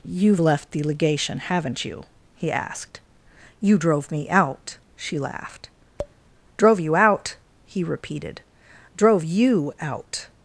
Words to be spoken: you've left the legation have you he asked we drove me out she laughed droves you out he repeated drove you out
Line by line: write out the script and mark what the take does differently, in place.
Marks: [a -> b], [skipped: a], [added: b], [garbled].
you've left the legation [have -> haven't] you he asked [we -> you] drove me out she laughed [droves -> drove] you out he repeated drove you out